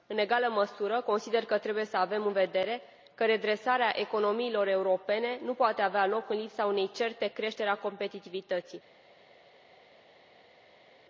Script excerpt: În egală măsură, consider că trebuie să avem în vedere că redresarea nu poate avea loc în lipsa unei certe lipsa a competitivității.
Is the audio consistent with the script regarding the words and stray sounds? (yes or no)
no